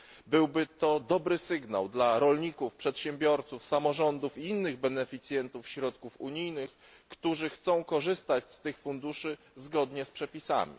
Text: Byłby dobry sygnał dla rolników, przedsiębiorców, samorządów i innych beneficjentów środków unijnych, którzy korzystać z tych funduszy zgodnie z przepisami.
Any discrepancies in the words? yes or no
yes